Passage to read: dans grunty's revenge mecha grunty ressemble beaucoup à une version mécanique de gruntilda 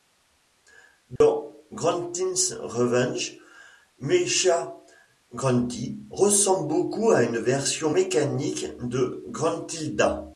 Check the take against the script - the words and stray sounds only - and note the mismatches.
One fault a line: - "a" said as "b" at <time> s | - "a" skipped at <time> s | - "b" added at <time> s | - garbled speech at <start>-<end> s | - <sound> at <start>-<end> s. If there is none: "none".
- dropout at 1.2-1.2 s